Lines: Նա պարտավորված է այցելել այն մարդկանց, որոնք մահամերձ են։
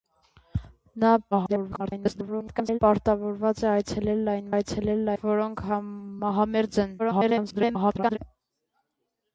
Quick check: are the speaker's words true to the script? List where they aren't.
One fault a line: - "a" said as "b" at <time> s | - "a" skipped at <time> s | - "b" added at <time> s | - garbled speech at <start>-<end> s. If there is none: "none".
- garbled speech at 1.3-2.8 s
- "մարդկանց" said as "այցելել" at 4.5 s
- garbled speech at 7.0-8.2 s